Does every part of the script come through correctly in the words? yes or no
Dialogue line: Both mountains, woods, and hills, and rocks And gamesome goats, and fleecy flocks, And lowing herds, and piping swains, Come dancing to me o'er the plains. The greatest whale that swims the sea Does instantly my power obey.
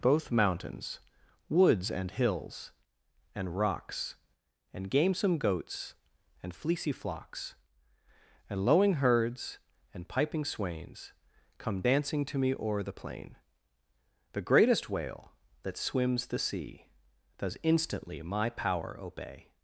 no